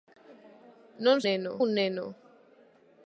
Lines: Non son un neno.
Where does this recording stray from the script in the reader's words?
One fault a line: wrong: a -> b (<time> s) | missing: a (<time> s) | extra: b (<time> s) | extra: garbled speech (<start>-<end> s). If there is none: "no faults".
wrong: son -> neno (1.3 s)